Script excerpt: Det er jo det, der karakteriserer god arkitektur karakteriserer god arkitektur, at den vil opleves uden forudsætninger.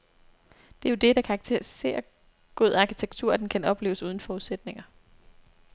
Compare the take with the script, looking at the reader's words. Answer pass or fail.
fail